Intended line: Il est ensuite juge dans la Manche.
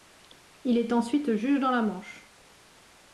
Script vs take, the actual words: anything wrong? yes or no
no